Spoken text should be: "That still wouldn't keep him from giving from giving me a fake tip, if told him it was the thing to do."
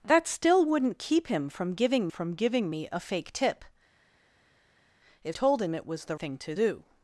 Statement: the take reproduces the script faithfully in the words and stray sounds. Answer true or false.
true